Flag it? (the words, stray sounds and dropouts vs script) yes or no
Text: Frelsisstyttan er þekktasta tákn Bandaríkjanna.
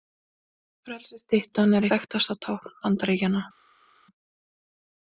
no